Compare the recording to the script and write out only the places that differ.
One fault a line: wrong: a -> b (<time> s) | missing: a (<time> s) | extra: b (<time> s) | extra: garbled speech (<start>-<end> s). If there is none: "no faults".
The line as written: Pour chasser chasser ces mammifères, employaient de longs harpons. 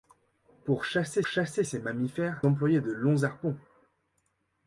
no faults